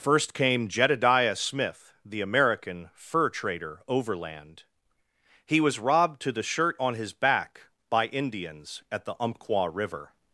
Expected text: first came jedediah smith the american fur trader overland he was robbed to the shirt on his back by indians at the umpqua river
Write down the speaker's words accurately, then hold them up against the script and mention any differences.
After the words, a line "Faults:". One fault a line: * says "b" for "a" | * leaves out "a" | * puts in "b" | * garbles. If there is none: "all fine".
first came jedediah smith the american fur trader overland he was robbed to the shirt on his back by indians at the umpqua river
Faults:
all fine